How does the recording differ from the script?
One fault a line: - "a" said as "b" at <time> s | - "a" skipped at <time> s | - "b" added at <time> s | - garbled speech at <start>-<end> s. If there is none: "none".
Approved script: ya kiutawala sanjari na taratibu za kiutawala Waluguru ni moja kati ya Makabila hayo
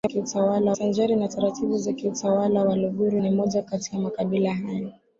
none